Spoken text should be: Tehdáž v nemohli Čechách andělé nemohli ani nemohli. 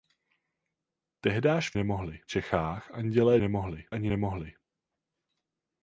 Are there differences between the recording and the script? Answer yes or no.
no